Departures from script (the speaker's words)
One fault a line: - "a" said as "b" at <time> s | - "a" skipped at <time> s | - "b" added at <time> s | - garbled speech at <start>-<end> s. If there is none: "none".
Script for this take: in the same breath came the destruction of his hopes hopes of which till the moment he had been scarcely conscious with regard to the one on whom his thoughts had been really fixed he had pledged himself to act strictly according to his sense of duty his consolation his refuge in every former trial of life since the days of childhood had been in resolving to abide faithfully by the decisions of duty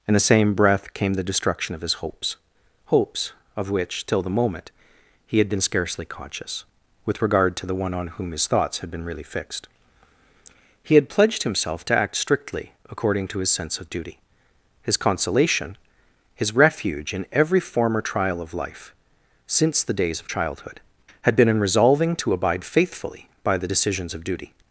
none